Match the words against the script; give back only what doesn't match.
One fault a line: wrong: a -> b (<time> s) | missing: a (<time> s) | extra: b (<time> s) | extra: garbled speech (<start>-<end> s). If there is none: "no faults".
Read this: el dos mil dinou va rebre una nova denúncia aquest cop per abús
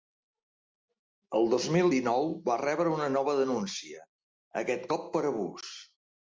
no faults